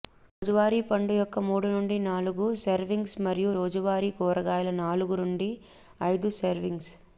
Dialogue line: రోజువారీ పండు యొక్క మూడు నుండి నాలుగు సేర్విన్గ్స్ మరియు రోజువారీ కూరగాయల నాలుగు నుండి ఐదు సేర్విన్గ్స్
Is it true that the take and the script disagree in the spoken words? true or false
false